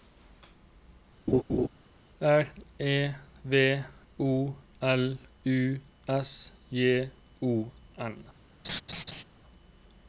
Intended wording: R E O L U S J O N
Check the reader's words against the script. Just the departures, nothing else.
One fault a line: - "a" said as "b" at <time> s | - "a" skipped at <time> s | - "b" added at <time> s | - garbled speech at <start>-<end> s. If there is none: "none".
- "V" added at 3.5 s